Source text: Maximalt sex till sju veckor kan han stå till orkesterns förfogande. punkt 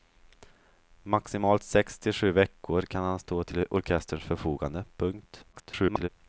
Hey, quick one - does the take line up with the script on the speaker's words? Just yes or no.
no